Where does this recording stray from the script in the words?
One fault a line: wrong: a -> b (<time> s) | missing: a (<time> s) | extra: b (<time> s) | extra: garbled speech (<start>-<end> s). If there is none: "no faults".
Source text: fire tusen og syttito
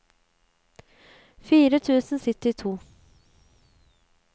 no faults